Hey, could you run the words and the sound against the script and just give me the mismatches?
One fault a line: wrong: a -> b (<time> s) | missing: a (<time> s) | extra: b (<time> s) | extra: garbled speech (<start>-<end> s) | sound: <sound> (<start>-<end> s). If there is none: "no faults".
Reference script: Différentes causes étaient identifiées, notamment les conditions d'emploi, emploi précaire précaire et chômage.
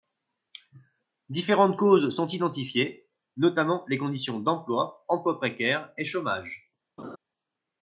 wrong: étaient -> sont (2.1 s)
missing: précaire (5.9 s)
sound: laugh (7.0-7.2 s)